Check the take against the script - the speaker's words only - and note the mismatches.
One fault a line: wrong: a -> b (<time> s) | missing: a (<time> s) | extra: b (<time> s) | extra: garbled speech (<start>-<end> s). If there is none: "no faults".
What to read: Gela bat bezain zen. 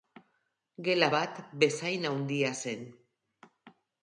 extra: handia (2.1 s)